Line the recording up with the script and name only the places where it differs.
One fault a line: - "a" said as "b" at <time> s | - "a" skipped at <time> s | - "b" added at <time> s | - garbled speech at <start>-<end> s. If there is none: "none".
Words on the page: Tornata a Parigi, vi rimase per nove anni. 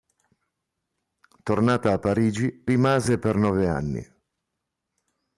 - "vi" skipped at 2.6 s